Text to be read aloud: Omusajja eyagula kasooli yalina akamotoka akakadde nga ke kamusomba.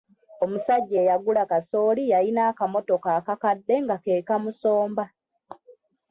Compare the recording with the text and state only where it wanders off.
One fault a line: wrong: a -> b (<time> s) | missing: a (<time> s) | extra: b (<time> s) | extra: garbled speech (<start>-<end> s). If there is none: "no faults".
no faults